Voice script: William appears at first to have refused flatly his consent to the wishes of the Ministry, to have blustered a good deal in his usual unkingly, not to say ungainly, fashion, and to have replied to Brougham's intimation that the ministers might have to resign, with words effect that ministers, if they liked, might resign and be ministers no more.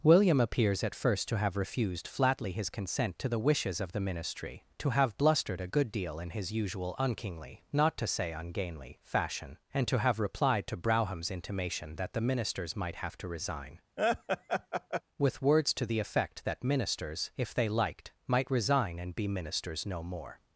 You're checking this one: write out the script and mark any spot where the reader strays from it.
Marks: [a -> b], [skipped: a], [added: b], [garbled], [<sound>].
William appears at first to have refused flatly his consent to the wishes of the Ministry, to have blustered a good deal in his usual unkingly, not to say ungainly, fashion, and to have replied to Brougham's intimation that the ministers might have to resign, [laugh] with words [added: to the] effect that ministers, if they liked, might resign and be ministers no more.